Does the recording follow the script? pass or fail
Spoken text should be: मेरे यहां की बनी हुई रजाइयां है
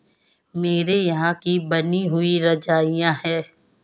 pass